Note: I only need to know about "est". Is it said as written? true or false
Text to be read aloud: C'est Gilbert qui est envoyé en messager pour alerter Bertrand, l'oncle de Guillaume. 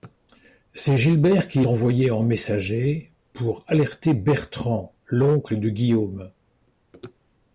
false